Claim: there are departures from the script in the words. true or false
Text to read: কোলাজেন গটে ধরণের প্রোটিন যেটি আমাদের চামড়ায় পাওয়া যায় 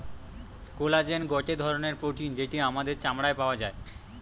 false